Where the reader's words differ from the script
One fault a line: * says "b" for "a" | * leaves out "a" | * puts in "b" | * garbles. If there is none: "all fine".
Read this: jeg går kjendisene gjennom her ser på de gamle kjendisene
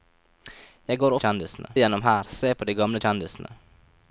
all fine